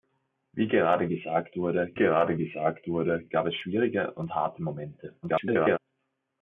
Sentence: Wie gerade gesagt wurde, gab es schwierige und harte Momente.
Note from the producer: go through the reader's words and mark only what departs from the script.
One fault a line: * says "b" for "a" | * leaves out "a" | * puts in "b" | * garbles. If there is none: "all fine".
* puts in "gerade gesagt wurde"
* garbles